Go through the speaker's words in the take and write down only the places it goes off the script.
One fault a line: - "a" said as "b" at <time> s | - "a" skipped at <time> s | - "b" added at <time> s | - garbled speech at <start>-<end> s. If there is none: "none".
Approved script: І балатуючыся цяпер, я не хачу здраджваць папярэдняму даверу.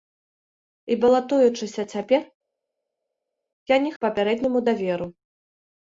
- "хачу здраджваць" skipped at 3.9 s